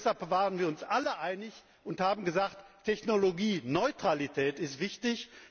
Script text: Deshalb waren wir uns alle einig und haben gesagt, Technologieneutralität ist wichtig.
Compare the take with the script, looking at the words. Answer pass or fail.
pass